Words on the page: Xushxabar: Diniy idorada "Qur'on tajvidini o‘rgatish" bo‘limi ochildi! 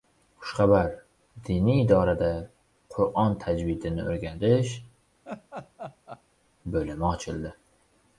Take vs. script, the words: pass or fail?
pass